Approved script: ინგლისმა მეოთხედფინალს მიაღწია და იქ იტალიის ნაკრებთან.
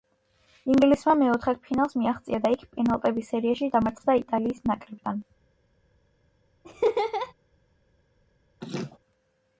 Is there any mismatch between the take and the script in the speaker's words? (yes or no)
yes